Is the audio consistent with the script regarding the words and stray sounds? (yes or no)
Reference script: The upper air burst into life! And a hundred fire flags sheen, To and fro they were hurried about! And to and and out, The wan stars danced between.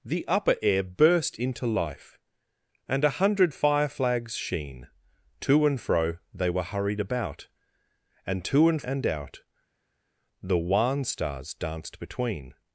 yes